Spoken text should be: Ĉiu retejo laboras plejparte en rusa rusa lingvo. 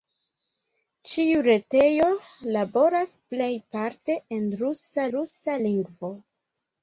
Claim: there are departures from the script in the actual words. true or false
false